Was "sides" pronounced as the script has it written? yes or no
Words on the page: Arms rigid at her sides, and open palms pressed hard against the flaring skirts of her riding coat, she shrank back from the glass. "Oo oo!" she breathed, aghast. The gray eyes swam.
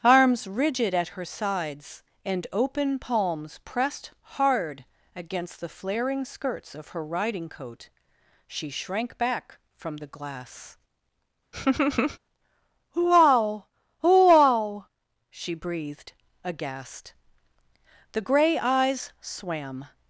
yes